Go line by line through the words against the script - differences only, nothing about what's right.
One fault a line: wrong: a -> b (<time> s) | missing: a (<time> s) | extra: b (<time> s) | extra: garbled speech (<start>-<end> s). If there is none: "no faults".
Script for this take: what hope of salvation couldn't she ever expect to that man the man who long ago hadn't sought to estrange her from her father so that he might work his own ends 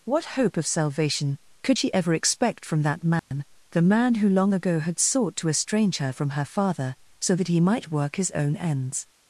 wrong: couldn't -> could (1.6 s)
wrong: to -> from (2.7 s)
wrong: hadn't -> had (4.8 s)